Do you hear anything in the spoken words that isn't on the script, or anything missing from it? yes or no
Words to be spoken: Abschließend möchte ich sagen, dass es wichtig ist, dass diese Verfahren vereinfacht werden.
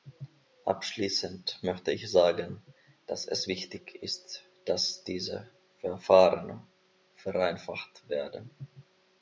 no